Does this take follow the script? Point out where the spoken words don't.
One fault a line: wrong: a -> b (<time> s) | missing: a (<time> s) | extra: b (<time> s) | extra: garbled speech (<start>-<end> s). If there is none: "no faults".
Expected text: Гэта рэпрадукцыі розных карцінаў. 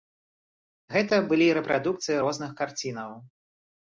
extra: былі (1.3 s)